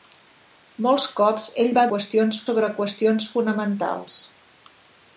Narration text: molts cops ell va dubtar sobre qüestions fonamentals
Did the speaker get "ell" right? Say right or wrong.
right